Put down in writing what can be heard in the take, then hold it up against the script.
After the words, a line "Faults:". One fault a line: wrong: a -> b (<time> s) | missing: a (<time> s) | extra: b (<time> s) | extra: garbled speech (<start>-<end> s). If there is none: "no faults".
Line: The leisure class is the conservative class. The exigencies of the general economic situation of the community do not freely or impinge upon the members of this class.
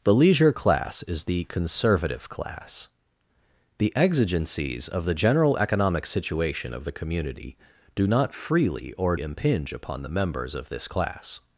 The leisure class is the conservative class. The exigencies of the general economic situation of the community do not freely or impinge upon the members of this class.
Faults:
no faults